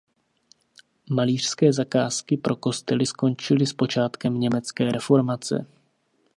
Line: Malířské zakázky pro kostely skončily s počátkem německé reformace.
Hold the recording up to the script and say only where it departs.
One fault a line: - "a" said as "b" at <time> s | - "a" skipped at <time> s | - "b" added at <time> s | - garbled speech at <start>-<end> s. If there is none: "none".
none